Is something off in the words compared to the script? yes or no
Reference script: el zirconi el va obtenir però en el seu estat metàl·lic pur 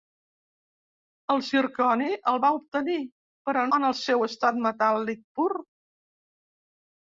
no